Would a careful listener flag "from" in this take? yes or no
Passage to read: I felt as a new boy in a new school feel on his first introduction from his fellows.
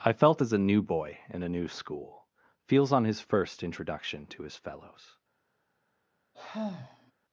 yes